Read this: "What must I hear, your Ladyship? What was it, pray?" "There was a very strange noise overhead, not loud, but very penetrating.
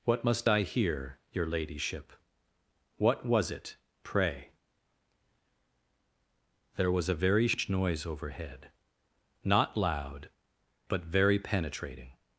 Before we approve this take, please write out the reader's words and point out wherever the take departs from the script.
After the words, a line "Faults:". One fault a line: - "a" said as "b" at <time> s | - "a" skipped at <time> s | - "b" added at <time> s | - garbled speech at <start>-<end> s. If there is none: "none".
"What must I hear, your Ladyship? What was it, pray?" "There was a very sh noise overhead, not loud, but very penetrating.
Faults:
- "strange" said as "sh" at 7.5 s